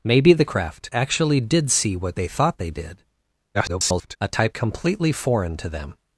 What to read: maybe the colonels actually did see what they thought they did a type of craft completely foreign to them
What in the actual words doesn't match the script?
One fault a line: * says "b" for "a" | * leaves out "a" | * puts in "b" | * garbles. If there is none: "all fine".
* says "craft" for "colonels"
* garbles
* leaves out "of craft"